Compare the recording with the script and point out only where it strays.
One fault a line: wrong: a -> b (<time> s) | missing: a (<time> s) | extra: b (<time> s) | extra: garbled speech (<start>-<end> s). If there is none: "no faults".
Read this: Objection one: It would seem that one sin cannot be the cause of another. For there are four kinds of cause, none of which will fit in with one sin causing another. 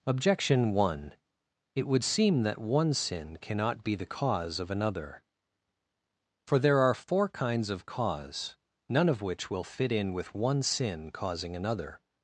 no faults